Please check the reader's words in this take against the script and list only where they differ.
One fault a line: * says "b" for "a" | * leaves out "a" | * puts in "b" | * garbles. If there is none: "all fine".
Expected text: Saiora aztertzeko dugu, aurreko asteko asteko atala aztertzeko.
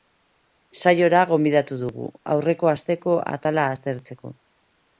* says "gonbidatu" for "aztertzeko"
* leaves out "asteko"